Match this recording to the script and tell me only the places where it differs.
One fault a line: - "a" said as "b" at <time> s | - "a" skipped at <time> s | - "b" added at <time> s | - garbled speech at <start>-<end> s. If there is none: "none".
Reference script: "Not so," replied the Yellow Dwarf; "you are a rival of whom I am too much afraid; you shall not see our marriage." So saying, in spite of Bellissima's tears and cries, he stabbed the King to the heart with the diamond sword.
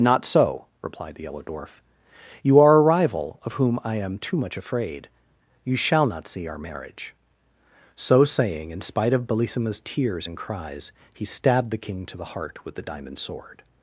none